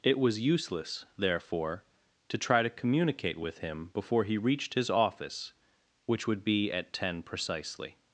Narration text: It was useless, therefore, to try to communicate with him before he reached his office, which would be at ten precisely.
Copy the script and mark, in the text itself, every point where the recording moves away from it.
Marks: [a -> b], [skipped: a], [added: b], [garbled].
It was useless, therefore, to try to communicate with him before he reached his office, which would be at ten precisely.